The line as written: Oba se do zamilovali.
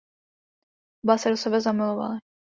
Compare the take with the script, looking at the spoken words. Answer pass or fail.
fail